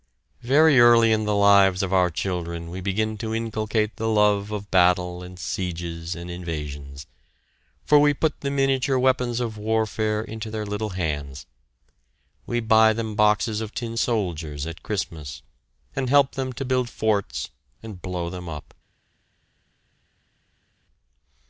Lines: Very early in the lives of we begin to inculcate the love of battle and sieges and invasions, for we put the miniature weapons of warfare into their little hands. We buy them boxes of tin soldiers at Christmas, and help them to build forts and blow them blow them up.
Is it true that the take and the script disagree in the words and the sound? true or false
true